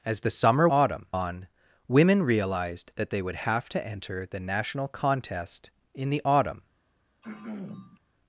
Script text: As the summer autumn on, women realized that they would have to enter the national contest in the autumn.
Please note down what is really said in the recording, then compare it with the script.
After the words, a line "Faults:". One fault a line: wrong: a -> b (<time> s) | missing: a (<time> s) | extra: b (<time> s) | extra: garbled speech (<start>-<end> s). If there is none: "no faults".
As the summer autumn on, women realized that they would have to enter the national contest in the autumn.
Faults:
no faults